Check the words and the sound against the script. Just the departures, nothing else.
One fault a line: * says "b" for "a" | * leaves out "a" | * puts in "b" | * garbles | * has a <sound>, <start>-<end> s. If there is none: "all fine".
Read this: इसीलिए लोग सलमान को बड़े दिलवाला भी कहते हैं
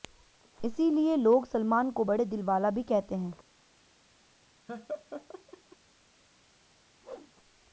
* has a laugh, 4.7-5.8 s
* has a whoosh, 7.0-7.3 s